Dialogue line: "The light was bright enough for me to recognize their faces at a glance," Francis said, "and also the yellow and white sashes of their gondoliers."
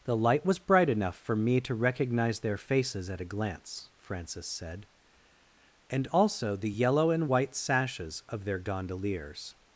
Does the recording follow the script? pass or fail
pass